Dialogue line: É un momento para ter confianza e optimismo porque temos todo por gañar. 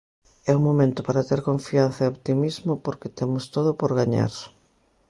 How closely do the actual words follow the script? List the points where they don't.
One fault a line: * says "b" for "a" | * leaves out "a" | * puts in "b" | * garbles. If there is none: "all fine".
all fine